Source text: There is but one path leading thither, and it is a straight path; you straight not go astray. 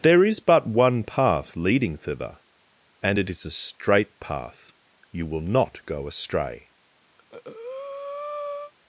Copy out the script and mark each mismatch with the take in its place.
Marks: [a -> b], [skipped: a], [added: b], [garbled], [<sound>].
There is but one path leading thither, and it is a straight path; you [straight -> will] not go astray. [breath]